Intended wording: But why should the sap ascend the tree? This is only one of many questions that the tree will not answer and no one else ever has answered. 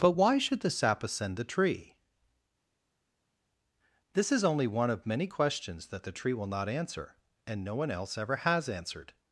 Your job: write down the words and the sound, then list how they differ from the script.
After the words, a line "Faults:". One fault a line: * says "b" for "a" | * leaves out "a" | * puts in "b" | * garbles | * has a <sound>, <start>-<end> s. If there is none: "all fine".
But why should the sap ascend the tree? This is only one of many questions that the tree will not answer and no one else ever has answered.
Faults:
all fine